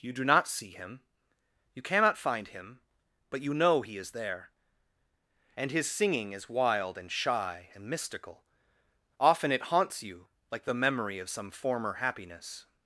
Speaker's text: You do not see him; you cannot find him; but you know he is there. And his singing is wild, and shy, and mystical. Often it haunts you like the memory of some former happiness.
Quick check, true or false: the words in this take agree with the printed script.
true